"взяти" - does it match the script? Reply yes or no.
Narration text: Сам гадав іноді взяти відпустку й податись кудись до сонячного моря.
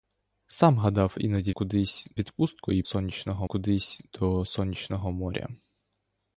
no